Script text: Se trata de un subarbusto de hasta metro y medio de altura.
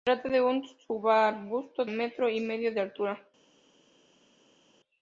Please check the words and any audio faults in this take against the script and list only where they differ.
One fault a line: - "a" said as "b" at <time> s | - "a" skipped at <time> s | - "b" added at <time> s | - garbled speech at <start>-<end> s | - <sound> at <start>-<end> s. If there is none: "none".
- "de hasta" skipped at 1.9 s